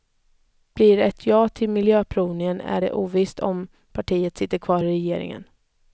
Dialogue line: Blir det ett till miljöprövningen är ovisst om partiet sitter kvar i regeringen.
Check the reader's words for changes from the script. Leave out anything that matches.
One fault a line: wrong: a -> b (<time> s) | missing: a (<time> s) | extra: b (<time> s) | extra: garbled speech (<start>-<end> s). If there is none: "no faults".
extra: ja (1.2 s)
extra: det (2.8 s)